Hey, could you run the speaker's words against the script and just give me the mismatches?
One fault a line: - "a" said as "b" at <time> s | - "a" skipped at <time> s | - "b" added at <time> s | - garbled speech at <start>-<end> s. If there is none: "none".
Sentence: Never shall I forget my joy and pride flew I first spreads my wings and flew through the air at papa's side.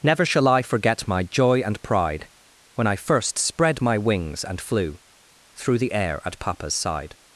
- "flew" said as "when" at 2.7 s
- "spreads" said as "spread" at 3.4 s